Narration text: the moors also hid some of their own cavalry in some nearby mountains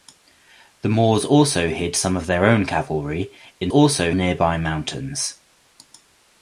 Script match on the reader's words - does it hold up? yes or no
no